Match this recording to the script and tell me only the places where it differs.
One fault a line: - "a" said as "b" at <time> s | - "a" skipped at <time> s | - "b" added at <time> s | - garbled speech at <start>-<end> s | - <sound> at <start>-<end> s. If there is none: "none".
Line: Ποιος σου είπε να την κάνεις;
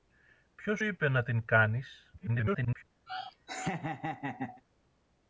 - "σου" skipped at 0.8 s
- garbled speech at 2.2-2.8 s
- laugh at 3.1-4.6 s